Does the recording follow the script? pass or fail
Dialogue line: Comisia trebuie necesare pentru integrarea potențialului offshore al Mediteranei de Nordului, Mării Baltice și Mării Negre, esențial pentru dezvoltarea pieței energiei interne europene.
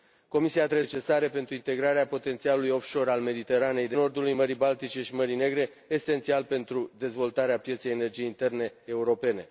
pass